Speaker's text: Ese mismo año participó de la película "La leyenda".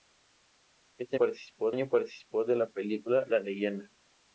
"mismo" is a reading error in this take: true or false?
true